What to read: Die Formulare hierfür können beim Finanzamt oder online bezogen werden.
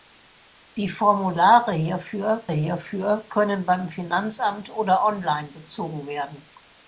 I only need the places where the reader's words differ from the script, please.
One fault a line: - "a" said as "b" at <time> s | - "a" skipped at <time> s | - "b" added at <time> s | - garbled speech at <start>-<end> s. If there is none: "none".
- "hierfür" added at 2.5 s